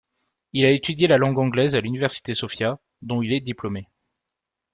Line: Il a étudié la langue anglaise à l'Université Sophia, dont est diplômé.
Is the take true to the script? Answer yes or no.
no